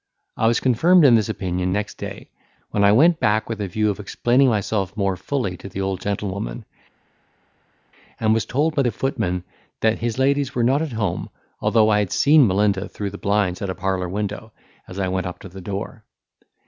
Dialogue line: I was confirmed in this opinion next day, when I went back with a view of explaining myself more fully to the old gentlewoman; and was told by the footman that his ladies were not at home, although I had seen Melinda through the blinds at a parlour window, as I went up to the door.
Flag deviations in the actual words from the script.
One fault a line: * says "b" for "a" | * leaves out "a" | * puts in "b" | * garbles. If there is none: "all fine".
all fine